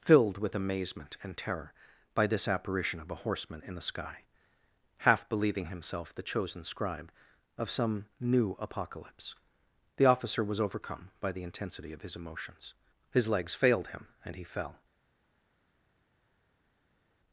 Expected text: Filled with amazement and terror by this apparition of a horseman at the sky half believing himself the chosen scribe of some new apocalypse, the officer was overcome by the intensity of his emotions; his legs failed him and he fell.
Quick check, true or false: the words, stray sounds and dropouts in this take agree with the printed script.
false